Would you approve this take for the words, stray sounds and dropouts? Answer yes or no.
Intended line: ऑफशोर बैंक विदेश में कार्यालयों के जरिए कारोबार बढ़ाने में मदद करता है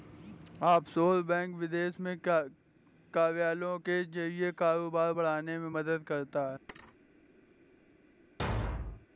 no